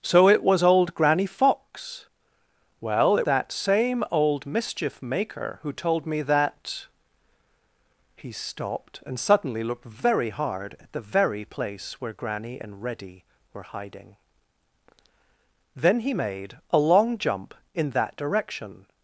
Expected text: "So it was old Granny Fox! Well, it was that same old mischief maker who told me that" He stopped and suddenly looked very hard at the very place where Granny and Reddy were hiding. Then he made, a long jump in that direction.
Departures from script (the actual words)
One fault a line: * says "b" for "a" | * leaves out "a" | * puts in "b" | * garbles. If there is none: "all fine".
* leaves out "was"